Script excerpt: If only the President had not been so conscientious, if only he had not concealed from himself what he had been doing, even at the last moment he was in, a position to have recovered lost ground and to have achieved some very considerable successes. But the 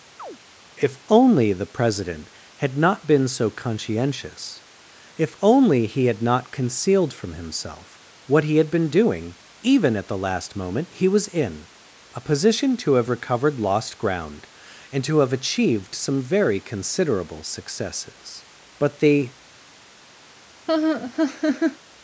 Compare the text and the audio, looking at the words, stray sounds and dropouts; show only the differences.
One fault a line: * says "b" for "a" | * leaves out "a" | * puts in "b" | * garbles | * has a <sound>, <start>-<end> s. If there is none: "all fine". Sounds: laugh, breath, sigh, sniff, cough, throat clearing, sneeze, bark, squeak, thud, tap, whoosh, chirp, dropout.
* has a chirp, 0.2-0.4 s
* has a laugh, 20.7-21.8 s